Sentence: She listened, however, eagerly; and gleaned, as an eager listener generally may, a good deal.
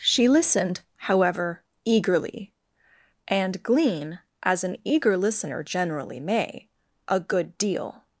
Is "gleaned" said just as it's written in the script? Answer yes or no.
no